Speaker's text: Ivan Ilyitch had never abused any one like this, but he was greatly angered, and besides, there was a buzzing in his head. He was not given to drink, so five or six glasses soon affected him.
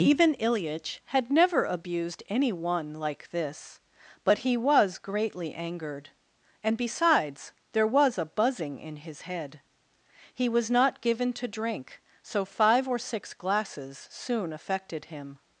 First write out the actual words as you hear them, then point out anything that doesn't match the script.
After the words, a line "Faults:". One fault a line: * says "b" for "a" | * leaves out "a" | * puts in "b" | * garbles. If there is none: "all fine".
Ivan Ilyitch had never abused any one like this, but he was greatly angered, and besides, there was a buzzing in his head. He was not given to drink, so five or six glasses soon affected him.
Faults:
all fine